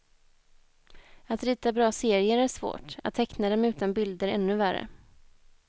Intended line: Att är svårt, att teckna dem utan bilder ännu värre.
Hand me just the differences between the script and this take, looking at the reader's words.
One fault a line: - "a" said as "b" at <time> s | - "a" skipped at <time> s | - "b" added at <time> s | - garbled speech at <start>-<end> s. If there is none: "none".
- "rita bra serier" added at 1.4 s